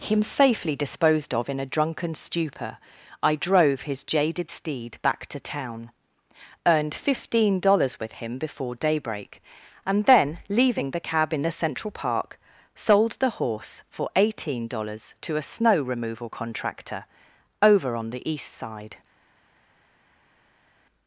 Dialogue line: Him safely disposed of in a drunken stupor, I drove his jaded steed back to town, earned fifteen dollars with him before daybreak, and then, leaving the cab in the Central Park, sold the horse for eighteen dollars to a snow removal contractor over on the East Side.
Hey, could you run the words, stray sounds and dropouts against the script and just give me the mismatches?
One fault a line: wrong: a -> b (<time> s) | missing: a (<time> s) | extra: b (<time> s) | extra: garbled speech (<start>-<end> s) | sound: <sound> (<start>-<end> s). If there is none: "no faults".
no faults